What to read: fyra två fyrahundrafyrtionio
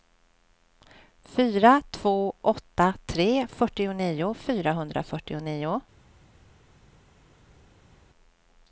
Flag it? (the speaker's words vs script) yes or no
yes